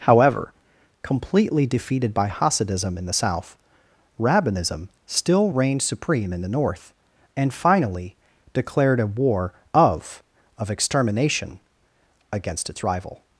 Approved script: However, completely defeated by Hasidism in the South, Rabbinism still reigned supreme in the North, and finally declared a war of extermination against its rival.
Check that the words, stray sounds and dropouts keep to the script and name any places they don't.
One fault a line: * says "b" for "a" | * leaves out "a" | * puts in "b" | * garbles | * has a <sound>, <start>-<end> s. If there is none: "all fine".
* puts in "of"